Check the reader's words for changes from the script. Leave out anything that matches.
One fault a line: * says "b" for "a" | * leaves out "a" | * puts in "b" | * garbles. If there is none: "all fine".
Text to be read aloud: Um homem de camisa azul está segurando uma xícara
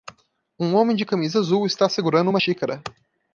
all fine